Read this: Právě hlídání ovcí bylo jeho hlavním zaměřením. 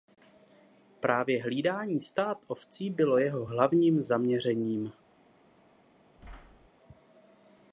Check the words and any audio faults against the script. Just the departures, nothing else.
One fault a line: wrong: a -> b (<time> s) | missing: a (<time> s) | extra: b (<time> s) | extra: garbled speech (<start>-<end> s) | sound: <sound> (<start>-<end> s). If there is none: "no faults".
extra: stád (2.0 s)
sound: thud (6.2-6.7 s)